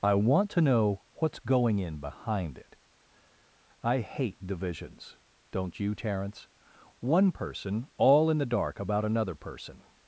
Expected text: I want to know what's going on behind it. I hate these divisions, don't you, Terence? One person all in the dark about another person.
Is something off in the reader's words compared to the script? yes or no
yes